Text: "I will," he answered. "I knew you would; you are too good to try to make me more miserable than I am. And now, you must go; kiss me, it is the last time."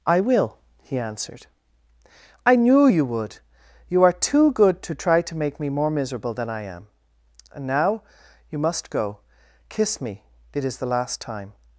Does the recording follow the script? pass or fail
pass